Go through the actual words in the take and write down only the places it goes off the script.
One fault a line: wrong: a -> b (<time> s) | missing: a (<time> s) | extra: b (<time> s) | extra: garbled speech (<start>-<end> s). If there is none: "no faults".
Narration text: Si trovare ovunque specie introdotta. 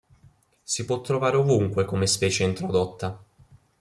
extra: può (0.8 s)
extra: come (1.8 s)